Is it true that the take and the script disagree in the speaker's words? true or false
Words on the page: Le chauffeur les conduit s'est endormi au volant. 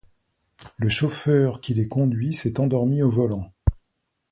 true